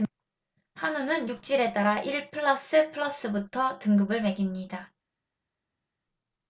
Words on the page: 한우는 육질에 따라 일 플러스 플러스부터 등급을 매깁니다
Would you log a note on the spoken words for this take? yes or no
no